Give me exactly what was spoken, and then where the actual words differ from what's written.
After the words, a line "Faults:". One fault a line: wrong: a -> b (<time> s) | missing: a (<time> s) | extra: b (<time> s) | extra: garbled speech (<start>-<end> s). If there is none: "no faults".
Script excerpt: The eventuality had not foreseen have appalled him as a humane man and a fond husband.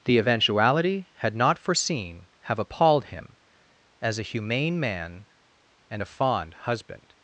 The eventuality had not foreseen have appalled him as a humane man and a fond husband.
Faults:
no faults